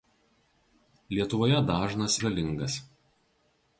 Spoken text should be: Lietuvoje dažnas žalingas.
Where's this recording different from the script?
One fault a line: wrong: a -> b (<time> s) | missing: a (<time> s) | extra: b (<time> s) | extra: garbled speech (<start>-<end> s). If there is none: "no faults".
no faults